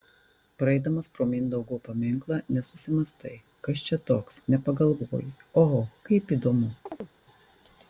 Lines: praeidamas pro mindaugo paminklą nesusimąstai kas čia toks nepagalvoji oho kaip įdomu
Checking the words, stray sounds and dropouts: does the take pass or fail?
fail